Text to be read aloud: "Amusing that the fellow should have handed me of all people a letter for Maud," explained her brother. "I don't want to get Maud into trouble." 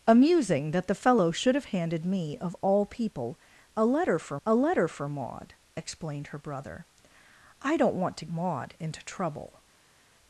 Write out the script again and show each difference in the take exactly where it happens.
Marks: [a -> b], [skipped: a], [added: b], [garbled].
"Amusing that the fellow should have handed me of all people a letter for [added: a letter for] Maud," explained her brother. "I don't want to [skipped: get] Maud into trouble."